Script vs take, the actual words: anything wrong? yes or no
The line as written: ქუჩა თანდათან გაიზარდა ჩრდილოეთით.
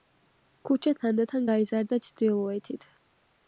no